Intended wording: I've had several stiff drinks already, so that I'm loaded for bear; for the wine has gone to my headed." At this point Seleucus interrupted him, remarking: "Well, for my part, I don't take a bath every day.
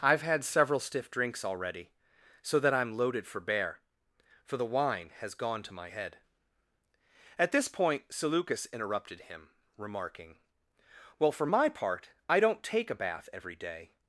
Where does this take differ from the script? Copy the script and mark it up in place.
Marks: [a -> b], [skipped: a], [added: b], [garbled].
I've had several stiff drinks already, so that I'm loaded for bear; for the wine has gone to my [headed." -> head] At this point Seleucus interrupted him, remarking: "Well, for my part, I don't take a bath every day.